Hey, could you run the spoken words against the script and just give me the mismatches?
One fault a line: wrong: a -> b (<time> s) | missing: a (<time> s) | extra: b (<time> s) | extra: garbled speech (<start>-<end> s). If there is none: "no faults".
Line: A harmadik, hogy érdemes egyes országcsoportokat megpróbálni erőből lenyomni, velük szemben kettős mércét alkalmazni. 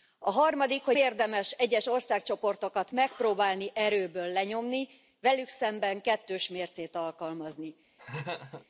no faults